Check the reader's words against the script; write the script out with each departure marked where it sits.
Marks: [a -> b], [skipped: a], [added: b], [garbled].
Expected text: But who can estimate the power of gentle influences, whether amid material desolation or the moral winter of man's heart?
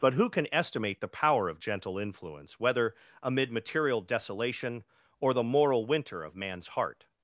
But who can estimate the power of gentle [influences, -> influence] whether amid material desolation or the moral winter of man's heart?